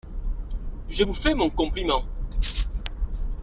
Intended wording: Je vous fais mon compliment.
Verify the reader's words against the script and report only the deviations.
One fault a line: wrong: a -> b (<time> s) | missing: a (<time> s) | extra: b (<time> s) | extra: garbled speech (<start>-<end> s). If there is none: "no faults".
no faults